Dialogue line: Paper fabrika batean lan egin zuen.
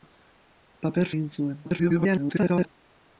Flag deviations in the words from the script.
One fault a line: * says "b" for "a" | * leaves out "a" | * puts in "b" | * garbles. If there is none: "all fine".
* leaves out "fabrika batean lan"
* garbles